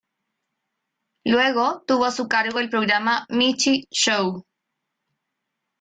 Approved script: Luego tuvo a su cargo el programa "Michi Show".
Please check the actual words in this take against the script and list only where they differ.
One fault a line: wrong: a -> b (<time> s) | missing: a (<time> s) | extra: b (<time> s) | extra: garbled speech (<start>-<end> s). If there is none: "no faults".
no faults